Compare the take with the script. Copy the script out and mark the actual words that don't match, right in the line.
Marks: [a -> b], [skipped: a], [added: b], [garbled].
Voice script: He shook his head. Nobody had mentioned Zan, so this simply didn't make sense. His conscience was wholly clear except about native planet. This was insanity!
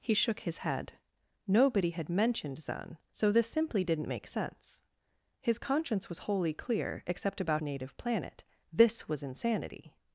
He shook his head. Nobody had mentioned Zan, so this simply didn't make sense. His conscience was wholly clear except about native planet. This was insanity!